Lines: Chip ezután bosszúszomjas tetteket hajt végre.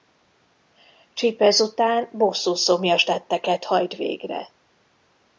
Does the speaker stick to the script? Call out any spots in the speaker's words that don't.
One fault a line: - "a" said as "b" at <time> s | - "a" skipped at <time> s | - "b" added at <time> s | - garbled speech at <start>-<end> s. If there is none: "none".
none